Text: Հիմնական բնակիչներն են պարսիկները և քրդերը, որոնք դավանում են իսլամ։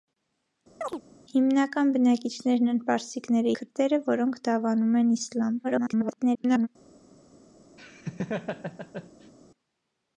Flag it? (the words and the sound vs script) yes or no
yes